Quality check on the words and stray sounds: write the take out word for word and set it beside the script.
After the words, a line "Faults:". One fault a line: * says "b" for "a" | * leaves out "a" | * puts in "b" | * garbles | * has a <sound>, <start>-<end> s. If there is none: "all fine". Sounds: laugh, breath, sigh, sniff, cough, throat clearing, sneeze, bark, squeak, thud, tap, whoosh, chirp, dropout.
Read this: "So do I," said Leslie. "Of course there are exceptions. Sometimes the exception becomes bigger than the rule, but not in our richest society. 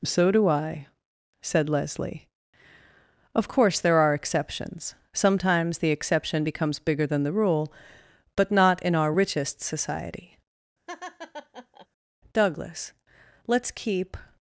"So do I," said Leslie. "Of course there are exceptions. Sometimes the exception becomes bigger than the rule, but not in our richest society. Douglas, let's keep
Faults:
* has a laugh, 10.9-11.9 s
* puts in "Douglas let's keep"